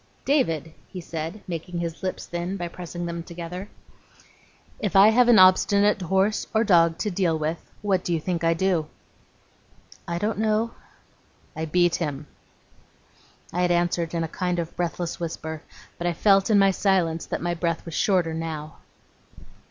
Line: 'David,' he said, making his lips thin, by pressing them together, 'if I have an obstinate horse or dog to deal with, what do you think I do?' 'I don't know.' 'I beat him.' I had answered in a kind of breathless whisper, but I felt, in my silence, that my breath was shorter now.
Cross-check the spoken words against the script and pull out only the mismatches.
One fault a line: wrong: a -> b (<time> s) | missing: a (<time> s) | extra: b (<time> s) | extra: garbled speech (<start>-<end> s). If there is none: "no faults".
no faults